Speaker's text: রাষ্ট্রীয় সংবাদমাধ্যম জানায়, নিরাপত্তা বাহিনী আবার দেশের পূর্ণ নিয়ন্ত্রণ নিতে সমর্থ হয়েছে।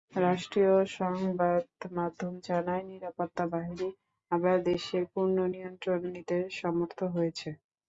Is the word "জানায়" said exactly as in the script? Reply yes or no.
yes